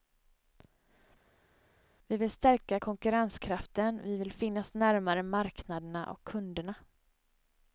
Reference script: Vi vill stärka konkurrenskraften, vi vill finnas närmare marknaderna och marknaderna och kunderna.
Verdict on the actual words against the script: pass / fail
fail